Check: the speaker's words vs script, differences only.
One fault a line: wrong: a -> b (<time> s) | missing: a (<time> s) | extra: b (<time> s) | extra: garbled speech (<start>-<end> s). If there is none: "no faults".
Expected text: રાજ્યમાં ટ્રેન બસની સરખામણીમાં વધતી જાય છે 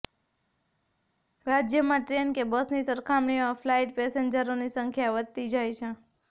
extra: કે (2.3 s)
extra: ફ્લાઇટ પેસેન્જરોની સંખ્યા (3.6 s)